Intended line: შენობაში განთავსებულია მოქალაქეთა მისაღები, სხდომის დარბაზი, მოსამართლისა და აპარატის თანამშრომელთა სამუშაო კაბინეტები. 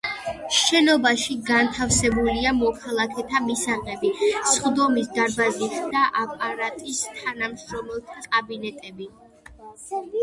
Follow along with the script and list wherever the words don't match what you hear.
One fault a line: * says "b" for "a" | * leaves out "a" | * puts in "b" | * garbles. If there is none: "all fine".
* leaves out "მოსამართლისა"
* leaves out "სამუშაო"